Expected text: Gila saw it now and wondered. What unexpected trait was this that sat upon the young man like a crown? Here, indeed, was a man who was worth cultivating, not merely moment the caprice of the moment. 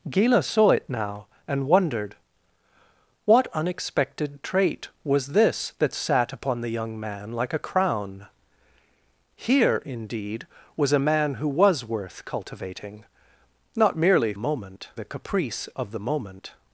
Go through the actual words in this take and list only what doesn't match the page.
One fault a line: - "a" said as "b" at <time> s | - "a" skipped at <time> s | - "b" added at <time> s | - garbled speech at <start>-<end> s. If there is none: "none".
none